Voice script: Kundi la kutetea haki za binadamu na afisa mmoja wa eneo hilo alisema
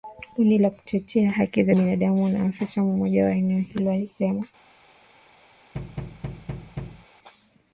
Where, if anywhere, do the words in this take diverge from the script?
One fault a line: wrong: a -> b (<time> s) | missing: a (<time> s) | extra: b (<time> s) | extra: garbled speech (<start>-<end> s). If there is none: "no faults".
no faults